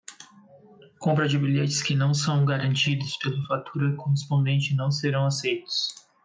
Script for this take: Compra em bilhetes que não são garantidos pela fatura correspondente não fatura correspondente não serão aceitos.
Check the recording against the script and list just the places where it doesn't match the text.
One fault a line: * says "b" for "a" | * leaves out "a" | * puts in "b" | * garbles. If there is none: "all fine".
* says "de" for "em"
* leaves out "fatura correspondente não"